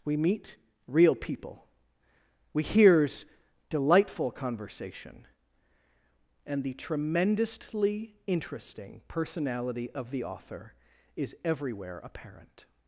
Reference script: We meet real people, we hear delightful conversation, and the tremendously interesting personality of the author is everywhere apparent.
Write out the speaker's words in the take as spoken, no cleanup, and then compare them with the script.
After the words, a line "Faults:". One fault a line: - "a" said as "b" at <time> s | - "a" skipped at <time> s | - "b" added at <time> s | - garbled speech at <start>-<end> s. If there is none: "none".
We meet real people, we hears delightful conversation, and the tremendously interesting personality of the author is everywhere apparent.
Faults:
- "hear" said as "hears" at 2.6 s